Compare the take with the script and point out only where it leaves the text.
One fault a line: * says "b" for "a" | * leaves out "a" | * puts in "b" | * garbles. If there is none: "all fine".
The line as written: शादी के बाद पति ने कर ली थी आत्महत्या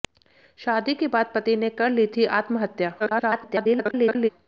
* garbles